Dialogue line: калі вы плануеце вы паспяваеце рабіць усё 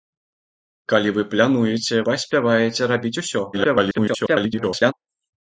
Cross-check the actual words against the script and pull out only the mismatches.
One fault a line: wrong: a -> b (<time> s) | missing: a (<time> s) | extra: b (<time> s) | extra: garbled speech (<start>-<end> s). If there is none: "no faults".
missing: вы (1.9 s)
extra: garbled speech (3.5-4.9 s)